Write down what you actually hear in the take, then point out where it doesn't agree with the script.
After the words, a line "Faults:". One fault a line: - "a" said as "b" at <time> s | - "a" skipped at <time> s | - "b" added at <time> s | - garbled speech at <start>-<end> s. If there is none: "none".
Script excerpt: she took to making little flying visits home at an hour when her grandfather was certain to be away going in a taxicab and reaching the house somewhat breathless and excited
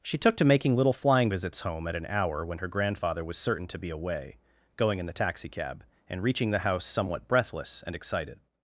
she took to making little flying visits home at an hour when her grandfather was certain to be away going in the taxicab and reaching the house somewhat breathless and excited
Faults:
- "a" said as "the" at 5.1 s